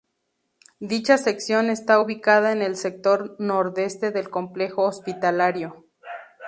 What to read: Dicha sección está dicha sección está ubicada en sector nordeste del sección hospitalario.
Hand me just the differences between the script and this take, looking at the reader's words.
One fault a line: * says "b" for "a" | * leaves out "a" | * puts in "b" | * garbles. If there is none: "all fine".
* leaves out "dicha sección está"
* puts in "el"
* says "complejo" for "sección"